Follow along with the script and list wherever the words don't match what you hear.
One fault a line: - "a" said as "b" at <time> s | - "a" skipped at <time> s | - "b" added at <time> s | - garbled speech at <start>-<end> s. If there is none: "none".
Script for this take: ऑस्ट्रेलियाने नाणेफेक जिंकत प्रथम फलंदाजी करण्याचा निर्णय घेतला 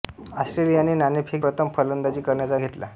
- "जिंकत" skipped at 1.4 s
- "निर्णय" skipped at 2.6 s